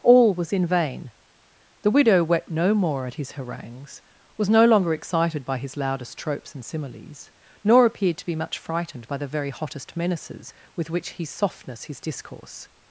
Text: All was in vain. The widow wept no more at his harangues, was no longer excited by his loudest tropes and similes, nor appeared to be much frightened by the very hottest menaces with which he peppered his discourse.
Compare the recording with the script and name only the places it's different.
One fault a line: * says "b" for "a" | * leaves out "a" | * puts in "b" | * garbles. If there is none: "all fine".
* says "softness" for "peppered"